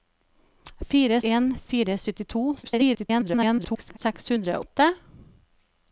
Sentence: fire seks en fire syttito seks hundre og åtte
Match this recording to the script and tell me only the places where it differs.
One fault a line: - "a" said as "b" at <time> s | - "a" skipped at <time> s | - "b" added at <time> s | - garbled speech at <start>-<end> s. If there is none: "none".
- "seks" skipped at 1.2 s
- garbled speech at 2.6-4.0 s
- "og" skipped at 4.6 s